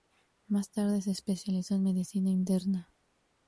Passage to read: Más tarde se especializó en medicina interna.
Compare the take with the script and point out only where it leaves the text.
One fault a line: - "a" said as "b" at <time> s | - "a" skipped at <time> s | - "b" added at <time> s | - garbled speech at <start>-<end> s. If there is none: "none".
none